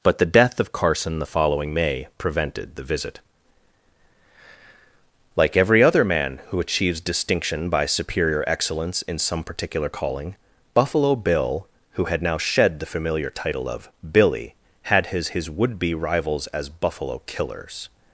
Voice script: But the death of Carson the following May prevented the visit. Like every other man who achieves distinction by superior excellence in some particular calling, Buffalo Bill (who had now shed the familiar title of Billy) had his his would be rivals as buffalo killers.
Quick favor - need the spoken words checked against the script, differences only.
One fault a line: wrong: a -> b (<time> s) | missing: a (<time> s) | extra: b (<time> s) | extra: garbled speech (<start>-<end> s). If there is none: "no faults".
no faults